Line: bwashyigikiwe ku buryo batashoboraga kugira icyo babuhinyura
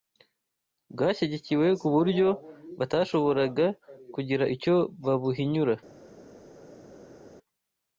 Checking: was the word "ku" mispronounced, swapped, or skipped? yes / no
no